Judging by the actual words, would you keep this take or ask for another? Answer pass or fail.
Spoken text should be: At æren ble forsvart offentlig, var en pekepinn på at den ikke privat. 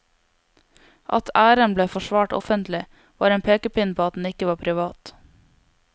fail